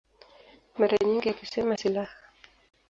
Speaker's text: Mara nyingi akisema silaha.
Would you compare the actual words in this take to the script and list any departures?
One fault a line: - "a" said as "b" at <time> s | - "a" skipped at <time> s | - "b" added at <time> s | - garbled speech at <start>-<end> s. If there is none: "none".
none